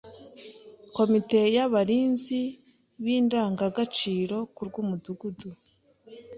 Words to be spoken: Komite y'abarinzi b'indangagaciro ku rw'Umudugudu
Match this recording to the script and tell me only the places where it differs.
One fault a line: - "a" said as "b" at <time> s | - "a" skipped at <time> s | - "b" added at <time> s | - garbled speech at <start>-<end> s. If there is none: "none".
none